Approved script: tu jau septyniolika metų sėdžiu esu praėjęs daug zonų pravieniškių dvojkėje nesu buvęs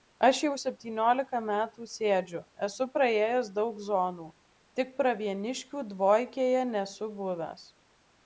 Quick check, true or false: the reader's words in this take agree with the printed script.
false